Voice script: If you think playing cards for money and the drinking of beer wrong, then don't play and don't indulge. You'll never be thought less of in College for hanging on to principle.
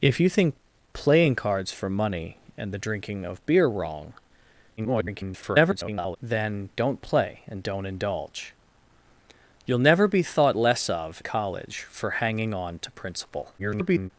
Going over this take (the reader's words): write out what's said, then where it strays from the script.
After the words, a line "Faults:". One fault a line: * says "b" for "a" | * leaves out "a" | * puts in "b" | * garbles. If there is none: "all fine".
If you think playing cards for money and the drinking of beer wrong, [garbled] then don't play and don't indulge. You'll never be thought less of College for hanging on to principle. [garbled]
Faults:
* garbles
* leaves out "in"
* garbles